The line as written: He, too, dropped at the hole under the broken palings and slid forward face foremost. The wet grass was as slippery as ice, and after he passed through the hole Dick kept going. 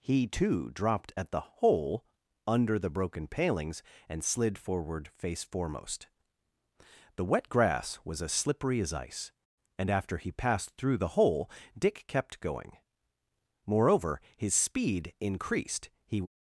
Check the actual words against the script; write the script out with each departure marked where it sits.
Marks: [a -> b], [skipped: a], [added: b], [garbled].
He, too, dropped at the hole under the broken palings and slid forward face foremost. The wet grass was as slippery as ice, and after he passed through the hole Dick kept going. [added: Moreover his speed increased He]